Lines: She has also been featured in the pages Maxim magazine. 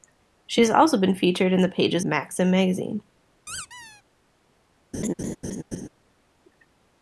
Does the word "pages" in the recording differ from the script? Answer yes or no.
no